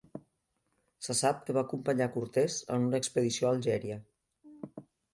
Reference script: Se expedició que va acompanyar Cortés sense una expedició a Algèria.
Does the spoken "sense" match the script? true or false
false